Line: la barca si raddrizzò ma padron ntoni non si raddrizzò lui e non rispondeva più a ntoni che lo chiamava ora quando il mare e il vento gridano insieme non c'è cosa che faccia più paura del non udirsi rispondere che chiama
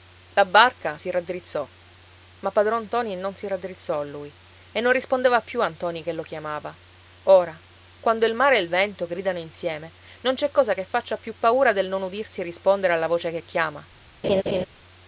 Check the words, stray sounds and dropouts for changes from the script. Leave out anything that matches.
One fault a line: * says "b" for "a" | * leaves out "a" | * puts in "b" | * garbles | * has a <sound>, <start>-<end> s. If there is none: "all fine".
* puts in "alla voce"
* has a laugh, 14.2-14.7 s